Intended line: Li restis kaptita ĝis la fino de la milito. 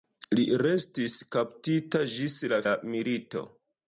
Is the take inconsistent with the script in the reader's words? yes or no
yes